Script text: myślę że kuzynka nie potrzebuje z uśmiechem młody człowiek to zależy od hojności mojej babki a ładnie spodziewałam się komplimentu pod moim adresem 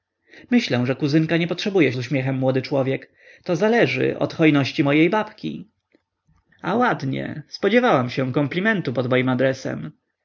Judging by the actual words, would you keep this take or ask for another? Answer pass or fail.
pass